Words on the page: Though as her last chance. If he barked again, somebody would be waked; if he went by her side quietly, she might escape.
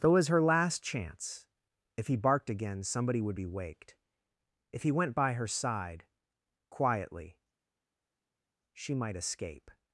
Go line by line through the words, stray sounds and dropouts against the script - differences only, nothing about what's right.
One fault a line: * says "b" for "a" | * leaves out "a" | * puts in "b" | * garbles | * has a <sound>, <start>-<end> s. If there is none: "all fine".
all fine